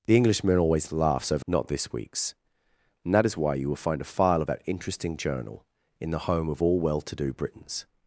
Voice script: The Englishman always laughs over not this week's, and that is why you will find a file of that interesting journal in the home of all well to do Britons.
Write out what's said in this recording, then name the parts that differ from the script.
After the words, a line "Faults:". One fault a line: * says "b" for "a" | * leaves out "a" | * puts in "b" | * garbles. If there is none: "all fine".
The Englishman always laughs over not this week's, and that is why you will find a file of that interesting journal in the home of all well to do Britons.
Faults:
all fine